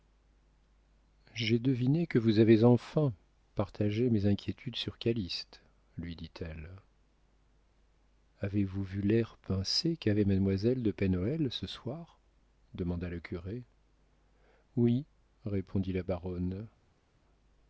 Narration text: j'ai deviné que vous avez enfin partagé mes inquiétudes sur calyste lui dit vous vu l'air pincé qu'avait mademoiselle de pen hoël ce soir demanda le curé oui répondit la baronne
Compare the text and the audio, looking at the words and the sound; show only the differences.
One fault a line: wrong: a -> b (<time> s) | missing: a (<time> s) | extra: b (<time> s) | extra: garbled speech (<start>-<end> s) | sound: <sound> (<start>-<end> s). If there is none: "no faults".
extra: elle avez (6.4 s)